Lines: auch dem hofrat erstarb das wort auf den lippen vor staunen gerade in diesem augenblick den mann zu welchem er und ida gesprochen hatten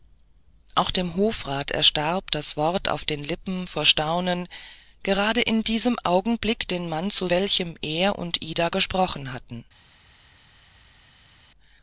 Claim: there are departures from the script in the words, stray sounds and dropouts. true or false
false